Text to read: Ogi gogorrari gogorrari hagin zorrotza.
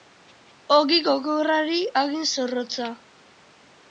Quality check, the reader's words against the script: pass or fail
fail